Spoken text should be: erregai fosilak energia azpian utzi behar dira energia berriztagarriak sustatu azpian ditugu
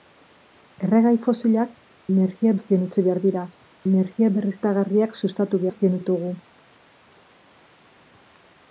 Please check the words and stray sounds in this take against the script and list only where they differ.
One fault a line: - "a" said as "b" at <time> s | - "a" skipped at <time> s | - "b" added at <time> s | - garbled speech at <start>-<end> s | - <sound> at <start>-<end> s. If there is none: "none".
none